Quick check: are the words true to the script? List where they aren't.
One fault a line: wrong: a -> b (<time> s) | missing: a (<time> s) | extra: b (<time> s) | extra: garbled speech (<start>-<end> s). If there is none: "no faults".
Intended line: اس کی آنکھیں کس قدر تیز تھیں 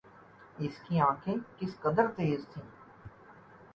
no faults